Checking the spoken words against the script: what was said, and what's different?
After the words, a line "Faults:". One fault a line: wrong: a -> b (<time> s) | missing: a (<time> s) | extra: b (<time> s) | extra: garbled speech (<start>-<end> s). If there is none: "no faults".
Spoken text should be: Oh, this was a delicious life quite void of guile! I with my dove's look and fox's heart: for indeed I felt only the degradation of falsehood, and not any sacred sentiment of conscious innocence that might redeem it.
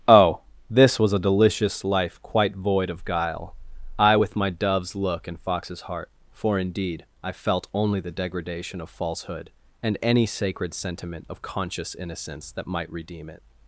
Oh, this was a delicious life quite void of guile! I with my dove's look and fox's heart: for indeed I felt only the degradation of falsehood, and any sacred sentiment of conscious innocence that might redeem it.
Faults:
missing: not (10.0 s)